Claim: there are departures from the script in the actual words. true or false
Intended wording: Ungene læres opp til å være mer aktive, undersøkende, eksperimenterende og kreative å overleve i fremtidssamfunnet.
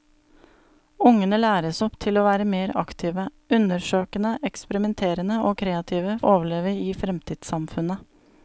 false